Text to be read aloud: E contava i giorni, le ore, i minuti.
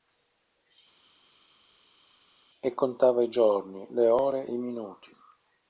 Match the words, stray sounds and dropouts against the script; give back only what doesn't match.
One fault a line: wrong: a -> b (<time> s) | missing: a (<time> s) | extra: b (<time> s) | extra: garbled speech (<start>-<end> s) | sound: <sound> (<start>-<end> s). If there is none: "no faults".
no faults